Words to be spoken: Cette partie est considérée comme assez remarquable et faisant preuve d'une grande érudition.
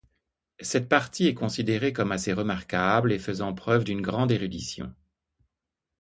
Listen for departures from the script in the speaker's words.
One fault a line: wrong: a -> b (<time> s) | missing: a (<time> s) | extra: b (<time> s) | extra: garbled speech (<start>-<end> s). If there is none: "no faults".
no faults